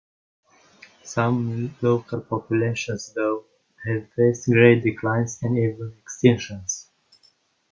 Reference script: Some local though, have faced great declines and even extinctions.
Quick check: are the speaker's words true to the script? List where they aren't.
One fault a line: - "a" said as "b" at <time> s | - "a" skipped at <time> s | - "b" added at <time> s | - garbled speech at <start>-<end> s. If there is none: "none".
- "populations" added at 2.2 s